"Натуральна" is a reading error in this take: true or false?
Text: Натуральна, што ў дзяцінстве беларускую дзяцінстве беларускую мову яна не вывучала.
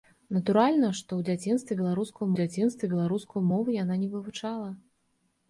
false